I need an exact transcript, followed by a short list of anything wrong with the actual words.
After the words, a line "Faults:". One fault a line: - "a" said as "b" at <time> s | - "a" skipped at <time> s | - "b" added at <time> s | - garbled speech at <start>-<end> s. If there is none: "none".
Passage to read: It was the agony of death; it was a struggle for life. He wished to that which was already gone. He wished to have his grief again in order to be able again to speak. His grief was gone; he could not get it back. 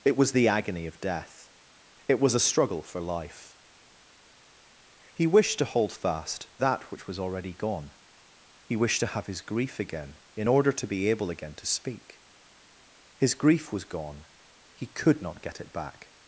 It was the agony of death; it was a struggle for life. He wished to hold fast that which was already gone. He wished to have his grief again in order to be able again to speak. His grief was gone; he could not get it back.
Faults:
- "hold fast" added at 5.6 s